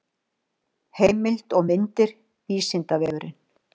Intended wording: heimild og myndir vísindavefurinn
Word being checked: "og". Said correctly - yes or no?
yes